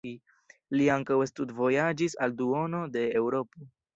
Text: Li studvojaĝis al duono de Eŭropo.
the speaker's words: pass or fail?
fail